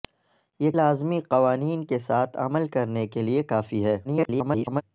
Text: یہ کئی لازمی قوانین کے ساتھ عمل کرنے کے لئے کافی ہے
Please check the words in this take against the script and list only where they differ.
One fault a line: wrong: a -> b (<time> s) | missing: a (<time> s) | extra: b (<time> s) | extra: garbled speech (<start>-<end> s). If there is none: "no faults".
missing: کئی (0.7 s)
extra: garbled speech (4.0-4.8 s)